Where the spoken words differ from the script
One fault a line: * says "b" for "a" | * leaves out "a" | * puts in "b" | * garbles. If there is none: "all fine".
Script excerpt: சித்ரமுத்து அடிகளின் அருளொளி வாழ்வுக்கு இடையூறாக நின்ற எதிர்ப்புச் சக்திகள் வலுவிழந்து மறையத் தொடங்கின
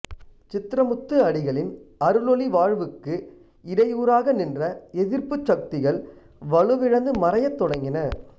all fine